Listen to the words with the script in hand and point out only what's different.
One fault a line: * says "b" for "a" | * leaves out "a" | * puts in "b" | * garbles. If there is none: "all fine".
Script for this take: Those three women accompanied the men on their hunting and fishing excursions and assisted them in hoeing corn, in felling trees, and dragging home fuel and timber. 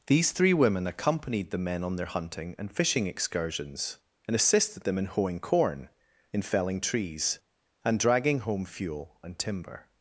* says "These" for "Those"